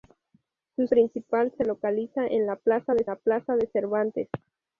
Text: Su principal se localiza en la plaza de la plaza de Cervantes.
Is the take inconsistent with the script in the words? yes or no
no